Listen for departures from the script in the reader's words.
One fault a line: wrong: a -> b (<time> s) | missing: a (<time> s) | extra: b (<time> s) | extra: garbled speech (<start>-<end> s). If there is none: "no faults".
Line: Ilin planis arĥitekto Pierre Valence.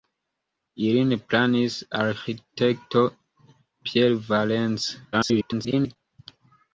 extra: garbled speech (5.1-6.0 s)